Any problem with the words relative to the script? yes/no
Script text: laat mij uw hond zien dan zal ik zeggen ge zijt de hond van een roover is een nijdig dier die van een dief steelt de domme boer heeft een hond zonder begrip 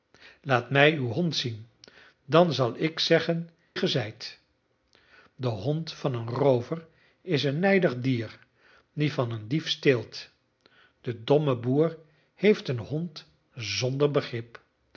no